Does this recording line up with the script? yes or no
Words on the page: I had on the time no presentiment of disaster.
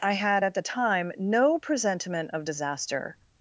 no